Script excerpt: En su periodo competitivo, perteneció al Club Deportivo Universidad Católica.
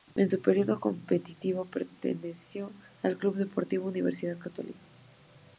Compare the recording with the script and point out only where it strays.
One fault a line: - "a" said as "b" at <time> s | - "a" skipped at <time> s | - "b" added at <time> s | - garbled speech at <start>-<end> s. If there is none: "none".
none